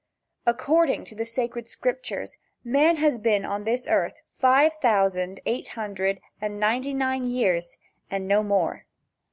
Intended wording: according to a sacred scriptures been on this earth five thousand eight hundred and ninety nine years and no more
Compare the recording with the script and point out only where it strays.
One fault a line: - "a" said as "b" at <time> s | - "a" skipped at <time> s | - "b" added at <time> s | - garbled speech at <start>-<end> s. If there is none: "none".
- "a" said as "the" at 1.1 s
- "man has" added at 2.6 s